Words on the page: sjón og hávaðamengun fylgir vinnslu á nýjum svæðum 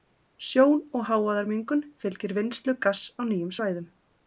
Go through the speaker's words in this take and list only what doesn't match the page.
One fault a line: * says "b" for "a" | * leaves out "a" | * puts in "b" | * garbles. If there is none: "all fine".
* puts in "gass"